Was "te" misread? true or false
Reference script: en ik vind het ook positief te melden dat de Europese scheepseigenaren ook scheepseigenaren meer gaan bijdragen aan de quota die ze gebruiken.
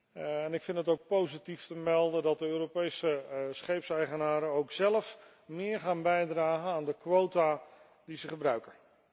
false